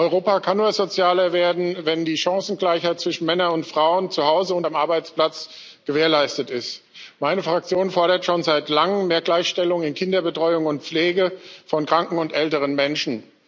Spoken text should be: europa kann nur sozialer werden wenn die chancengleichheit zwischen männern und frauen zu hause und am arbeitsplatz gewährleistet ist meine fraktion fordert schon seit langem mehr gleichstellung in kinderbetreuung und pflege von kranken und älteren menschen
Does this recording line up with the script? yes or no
yes